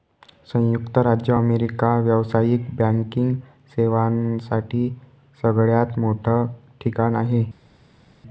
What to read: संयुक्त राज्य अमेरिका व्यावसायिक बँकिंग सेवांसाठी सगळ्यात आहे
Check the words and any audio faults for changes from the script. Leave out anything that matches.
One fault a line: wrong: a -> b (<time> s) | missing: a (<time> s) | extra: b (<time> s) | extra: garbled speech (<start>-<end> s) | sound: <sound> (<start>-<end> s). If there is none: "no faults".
extra: मोठं ठिकाण (6.0 s)